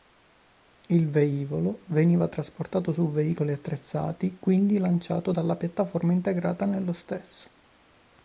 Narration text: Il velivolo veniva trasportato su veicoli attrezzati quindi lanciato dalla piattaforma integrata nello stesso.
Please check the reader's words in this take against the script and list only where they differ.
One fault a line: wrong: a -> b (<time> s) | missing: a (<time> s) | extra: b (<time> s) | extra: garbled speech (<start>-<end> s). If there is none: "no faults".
no faults